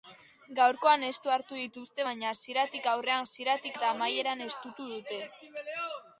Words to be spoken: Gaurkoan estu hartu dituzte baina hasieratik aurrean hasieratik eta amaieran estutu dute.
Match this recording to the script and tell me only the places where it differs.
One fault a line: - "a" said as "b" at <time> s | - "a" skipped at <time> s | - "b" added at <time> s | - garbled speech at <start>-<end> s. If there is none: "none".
none